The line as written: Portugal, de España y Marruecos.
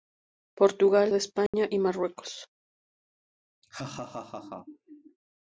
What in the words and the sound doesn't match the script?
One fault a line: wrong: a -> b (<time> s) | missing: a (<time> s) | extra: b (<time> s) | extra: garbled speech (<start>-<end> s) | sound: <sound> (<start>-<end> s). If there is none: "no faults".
sound: dropout (1.5-1.5 s)
sound: laugh (3.6-5.2 s)